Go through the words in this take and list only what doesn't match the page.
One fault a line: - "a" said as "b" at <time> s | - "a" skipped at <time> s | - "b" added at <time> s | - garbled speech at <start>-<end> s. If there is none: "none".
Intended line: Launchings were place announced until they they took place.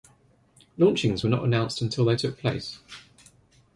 - "place" said as "not" at 1.3 s
- "they" skipped at 2.1 s